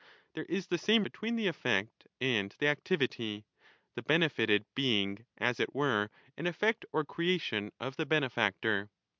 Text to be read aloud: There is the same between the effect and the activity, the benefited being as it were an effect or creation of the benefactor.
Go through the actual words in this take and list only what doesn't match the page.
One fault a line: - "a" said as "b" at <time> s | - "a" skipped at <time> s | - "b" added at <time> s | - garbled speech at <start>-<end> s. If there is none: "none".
none